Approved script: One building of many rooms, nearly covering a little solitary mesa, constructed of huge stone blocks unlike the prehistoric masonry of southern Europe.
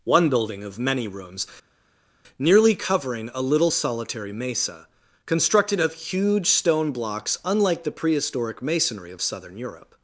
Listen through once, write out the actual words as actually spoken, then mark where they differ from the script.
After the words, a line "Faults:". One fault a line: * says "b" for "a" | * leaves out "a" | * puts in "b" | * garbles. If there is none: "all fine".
One building of many rooms, nearly covering a little solitary mesa, constructed of huge stone blocks unlike the prehistoric masonry of southern Europe.
Faults:
all fine